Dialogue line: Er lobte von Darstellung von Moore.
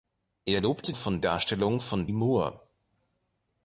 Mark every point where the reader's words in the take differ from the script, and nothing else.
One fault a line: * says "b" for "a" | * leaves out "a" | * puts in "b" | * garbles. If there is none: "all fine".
all fine